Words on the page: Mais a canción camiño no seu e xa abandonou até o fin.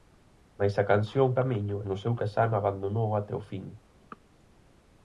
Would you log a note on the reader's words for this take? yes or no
no